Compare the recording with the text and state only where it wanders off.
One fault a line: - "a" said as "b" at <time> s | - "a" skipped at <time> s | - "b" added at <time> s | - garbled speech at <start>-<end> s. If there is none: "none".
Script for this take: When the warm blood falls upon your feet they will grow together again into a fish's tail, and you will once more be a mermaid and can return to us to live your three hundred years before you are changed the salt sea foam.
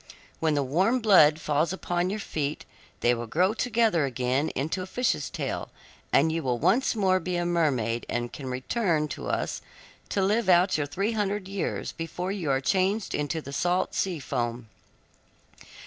- "out" added at 10.5 s
- "into" added at 13.2 s